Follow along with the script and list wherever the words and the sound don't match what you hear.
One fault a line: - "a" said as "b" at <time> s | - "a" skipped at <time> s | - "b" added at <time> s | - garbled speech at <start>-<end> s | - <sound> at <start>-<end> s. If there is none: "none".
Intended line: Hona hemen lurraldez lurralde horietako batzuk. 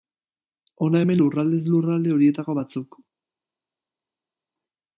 none